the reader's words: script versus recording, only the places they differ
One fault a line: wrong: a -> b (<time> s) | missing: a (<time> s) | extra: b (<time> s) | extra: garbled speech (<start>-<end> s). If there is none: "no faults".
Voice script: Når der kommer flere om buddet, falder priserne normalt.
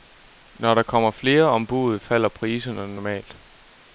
no faults